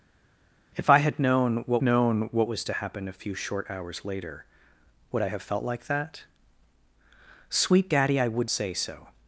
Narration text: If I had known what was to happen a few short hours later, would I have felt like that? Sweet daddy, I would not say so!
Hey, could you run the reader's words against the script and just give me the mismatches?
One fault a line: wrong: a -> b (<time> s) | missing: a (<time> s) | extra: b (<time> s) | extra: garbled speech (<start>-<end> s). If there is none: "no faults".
extra: known what (1.8 s)
missing: not (8.5 s)